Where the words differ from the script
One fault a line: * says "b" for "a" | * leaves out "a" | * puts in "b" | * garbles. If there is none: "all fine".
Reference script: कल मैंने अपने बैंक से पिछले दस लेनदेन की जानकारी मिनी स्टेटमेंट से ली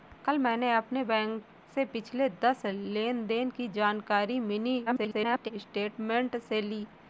* garbles